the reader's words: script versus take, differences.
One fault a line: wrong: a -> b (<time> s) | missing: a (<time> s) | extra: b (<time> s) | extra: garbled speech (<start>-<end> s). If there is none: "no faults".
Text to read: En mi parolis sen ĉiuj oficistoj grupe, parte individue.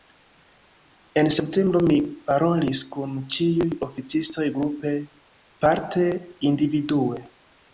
extra: septembro (1.4 s)
wrong: sen -> kun (3.0 s)